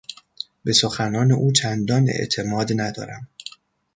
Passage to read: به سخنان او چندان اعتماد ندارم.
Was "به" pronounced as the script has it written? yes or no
yes